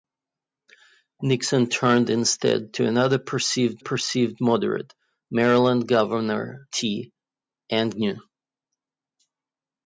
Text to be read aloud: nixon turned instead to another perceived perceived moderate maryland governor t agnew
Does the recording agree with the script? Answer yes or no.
yes